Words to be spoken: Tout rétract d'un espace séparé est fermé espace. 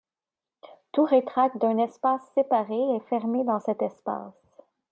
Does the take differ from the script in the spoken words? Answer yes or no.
yes